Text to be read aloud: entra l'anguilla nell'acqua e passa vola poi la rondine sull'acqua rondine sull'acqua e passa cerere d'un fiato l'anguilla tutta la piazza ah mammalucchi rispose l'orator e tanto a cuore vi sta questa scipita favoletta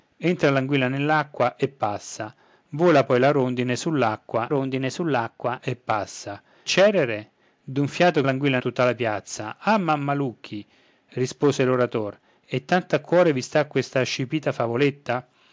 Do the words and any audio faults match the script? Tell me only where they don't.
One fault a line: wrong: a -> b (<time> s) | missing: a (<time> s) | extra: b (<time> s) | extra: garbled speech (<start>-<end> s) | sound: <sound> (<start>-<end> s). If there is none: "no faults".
no faults